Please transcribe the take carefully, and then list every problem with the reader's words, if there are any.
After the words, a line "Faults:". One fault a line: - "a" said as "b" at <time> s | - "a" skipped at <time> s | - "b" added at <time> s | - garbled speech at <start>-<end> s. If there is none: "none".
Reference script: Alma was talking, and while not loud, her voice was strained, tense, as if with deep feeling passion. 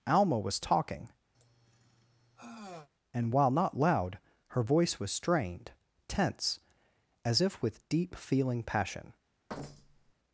Alma was talking, and while not loud, her voice was strained, tense, as if with deep feeling passion.
Faults:
none